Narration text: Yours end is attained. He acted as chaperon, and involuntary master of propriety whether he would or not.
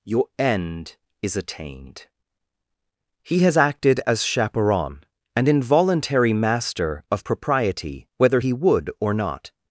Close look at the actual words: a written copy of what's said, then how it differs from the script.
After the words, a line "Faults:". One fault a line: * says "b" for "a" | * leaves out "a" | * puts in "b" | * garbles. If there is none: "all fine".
Your end is attained. He has acted as chaperon, and involuntary master of propriety whether he would or not.
Faults:
* says "Your" for "Yours"
* puts in "has"